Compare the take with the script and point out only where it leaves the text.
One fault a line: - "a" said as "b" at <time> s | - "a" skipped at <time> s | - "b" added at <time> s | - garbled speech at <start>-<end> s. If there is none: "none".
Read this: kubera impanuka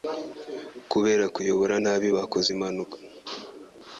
- "kuyobora nabi bakoze" added at 1.4 s